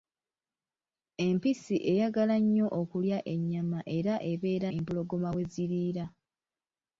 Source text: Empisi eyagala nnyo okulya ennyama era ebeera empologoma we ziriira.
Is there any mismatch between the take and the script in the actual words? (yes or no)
no